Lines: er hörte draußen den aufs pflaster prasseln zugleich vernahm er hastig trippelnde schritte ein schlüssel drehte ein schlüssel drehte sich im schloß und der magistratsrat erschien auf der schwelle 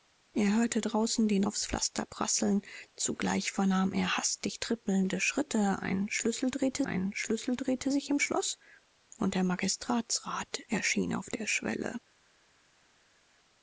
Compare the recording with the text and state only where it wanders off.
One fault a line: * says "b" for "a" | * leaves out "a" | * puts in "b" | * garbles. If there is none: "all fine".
all fine